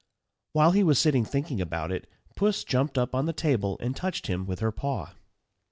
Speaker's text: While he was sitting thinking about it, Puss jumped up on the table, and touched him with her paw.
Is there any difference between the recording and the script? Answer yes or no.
no